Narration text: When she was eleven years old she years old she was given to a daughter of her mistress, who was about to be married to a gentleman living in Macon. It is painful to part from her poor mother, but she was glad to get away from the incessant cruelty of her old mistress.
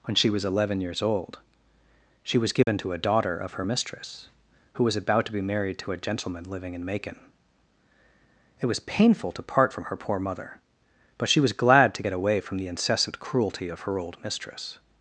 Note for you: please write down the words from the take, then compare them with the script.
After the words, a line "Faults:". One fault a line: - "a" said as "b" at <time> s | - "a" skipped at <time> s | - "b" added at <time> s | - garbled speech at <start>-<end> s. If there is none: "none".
When she was eleven years old she was given to a daughter of her mistress, who was about to be married to a gentleman living in Macon. It was painful to part from her poor mother, but she was glad to get away from the incessant cruelty of her old mistress.
Faults:
- "years old she" skipped at 2.4 s
- "is" said as "was" at 8.7 s